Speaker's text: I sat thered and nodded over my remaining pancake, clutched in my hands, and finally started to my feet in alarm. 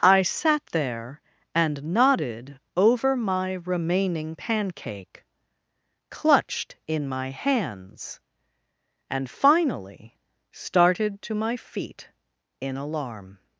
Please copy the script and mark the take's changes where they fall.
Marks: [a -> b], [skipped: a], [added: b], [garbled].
I sat [thered -> there] and nodded over my remaining pancake, clutched in my hands, and finally started to my feet in alarm.